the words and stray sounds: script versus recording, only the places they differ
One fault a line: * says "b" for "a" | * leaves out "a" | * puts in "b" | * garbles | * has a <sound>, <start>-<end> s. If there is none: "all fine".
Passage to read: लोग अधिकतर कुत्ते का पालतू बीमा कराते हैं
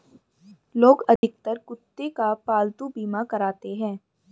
* has a dropout, 1.2-1.2 s